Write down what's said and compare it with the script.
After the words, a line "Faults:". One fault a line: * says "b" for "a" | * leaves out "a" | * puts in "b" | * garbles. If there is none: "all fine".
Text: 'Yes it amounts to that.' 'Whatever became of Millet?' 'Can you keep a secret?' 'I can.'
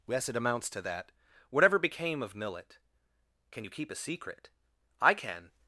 'Yes it amounts to that.' 'Whatever became of Millet?' 'Can you keep a secret?' 'I can.'
Faults:
all fine